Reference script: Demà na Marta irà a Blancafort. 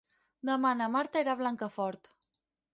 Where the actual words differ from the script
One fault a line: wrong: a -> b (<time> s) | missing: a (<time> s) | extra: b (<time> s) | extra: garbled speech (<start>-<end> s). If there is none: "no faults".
no faults